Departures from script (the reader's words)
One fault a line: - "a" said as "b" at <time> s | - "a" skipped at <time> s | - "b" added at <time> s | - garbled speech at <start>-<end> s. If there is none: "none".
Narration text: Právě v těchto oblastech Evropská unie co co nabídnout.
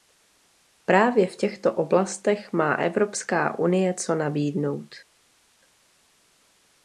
- "má" added at 2.5 s
- "co" skipped at 4.2 s